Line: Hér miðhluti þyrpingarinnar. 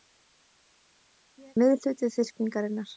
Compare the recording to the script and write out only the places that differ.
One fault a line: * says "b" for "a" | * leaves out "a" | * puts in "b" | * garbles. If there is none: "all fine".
all fine